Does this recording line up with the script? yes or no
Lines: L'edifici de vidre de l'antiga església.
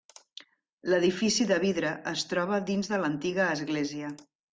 no